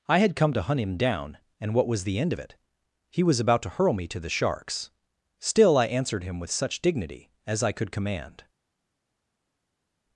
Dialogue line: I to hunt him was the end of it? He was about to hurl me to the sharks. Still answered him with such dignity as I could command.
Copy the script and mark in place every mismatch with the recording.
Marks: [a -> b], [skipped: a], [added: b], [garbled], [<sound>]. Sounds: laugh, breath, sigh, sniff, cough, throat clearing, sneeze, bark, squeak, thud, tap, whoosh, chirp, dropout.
I [added: had come] to hunt him [added: down and what] was the end of it? He was about to hurl me to the sharks. Still [added: I] answered him with such dignity as I could command.